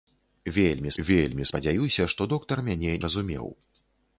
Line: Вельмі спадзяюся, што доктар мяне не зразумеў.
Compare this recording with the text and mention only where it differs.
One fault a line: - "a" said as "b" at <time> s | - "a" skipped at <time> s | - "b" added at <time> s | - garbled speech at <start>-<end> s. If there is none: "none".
- "вельмі" added at 1.1 s
- "не" skipped at 2.9 s